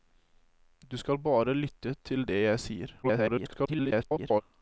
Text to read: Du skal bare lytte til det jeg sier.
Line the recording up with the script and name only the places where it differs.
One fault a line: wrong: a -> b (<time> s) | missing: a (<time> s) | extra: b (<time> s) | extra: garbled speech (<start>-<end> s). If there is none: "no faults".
extra: garbled speech (3.0-4.4 s)